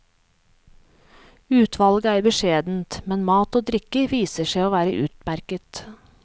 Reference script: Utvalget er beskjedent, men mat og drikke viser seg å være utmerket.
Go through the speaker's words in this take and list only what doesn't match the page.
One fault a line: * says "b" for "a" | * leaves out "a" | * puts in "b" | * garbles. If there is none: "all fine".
all fine